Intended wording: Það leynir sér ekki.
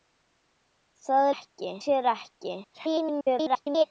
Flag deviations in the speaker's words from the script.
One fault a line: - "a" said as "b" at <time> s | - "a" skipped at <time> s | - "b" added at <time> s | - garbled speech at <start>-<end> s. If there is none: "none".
- "leynir" said as "ekki" at 1.3 s
- garbled speech at 2.6-3.8 s